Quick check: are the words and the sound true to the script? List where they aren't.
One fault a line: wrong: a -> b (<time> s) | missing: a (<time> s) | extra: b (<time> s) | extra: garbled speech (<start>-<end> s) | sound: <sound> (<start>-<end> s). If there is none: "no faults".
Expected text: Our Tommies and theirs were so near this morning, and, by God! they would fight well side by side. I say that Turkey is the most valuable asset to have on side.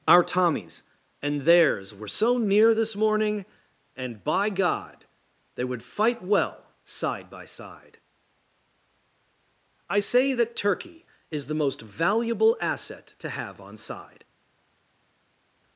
no faults